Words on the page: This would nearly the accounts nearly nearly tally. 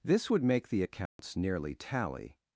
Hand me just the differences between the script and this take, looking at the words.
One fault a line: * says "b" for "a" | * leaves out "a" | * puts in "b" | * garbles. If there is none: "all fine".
* says "make" for "nearly"
* leaves out "nearly"